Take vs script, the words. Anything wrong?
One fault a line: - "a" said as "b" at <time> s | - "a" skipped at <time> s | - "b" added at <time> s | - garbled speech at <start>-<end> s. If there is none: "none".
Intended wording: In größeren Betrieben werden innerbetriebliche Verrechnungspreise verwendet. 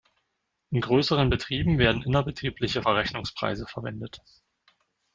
none